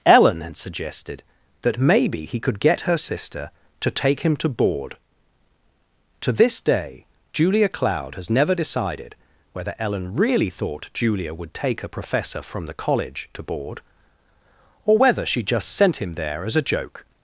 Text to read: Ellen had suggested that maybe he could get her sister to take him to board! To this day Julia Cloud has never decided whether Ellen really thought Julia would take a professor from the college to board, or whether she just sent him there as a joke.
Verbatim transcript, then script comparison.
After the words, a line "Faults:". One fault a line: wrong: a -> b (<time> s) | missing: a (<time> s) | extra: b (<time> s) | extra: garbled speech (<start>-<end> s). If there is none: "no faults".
Ellen had suggested that maybe he could get her sister to take him to board! To this day Julia Cloud has never decided whether Ellen really thought Julia would take a professor from the college to board, or whether she just sent him there as a joke.
Faults:
no faults